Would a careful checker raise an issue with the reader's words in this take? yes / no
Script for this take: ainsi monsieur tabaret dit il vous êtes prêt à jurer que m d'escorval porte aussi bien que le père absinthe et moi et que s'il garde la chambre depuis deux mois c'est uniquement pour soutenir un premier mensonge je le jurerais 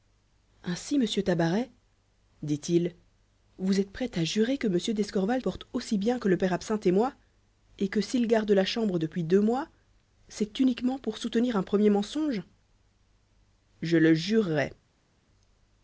no